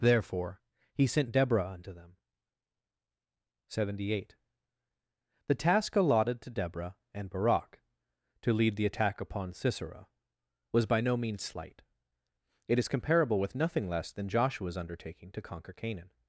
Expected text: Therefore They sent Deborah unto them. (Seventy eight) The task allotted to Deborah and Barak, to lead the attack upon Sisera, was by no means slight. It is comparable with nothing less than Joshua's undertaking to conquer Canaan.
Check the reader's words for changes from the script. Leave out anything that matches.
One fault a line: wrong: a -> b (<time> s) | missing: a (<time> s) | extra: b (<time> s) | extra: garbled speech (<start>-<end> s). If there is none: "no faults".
wrong: They -> He (0.9 s)